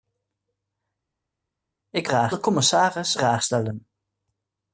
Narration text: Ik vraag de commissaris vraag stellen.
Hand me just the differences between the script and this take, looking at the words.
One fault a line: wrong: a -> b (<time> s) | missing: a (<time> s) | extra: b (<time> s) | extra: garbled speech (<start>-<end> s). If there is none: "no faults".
no faults